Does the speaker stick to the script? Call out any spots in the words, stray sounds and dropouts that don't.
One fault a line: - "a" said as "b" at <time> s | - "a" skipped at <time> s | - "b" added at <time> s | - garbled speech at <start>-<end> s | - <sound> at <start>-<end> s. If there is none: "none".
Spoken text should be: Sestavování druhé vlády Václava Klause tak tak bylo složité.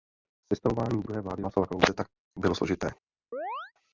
- "tak" skipped at 2.1 s
- chirp at 3.3-3.7 s